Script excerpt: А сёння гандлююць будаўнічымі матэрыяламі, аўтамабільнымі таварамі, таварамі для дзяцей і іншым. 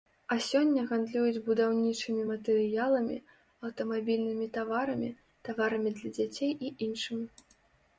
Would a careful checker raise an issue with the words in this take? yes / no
no